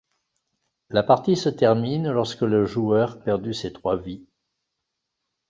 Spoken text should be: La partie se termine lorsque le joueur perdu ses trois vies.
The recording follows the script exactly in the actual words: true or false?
true